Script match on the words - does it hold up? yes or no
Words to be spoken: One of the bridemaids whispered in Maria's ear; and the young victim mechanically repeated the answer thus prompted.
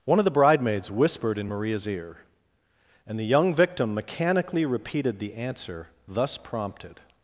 yes